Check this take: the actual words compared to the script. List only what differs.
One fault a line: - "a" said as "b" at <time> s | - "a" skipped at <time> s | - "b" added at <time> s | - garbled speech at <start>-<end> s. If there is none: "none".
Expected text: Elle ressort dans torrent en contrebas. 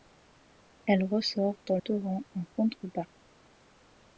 none